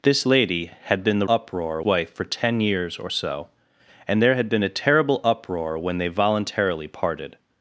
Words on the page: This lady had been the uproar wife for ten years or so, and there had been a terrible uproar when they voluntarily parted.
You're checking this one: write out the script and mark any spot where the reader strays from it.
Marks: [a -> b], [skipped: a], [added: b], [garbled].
This lady had been the uproar wife for ten years or so, and there had been a terrible uproar when they voluntarily parted.